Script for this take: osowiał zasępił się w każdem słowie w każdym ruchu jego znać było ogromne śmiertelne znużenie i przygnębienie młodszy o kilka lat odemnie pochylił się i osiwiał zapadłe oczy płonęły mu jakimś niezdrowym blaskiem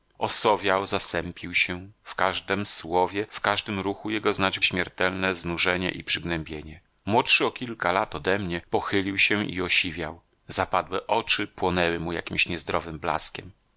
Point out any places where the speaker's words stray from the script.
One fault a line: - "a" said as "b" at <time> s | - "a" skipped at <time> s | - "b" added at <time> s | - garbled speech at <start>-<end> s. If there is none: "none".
- "było ogromne" skipped at 4.6 s